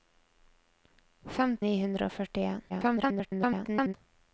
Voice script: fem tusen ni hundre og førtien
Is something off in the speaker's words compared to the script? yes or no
yes